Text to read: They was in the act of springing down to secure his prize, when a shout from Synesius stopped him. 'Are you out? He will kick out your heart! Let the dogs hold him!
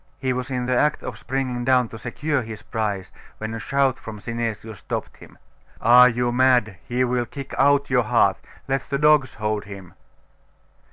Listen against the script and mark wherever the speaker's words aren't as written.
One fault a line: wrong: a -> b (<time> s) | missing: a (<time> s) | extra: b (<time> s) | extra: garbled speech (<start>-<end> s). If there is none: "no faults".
wrong: They -> He (0.2 s)
wrong: out -> mad (6.3 s)